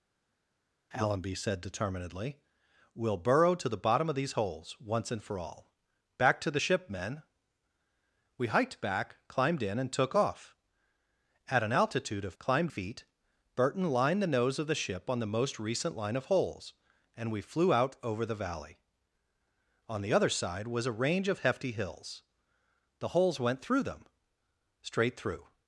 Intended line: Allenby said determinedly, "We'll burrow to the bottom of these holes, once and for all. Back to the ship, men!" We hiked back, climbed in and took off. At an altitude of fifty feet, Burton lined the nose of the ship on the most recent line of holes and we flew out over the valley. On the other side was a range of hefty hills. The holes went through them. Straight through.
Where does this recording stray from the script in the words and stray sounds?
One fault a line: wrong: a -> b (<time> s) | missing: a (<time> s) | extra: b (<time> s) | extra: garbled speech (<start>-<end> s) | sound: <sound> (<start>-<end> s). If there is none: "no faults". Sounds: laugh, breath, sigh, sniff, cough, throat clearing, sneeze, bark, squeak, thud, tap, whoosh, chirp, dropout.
wrong: fifty -> climbed (12.4 s)